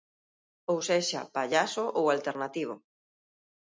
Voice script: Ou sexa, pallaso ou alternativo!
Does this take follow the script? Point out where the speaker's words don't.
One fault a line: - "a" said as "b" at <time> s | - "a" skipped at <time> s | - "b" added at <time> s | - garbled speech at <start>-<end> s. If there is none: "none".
none